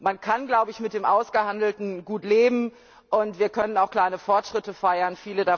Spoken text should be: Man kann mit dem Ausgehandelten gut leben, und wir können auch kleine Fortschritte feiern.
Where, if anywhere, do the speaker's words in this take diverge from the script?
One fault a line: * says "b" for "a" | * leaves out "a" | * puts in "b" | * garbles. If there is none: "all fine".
all fine